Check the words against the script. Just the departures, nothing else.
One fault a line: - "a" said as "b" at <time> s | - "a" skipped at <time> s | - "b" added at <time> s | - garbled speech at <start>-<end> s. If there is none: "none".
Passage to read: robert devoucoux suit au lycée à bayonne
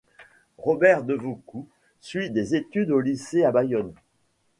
- "des études" added at 2.3 s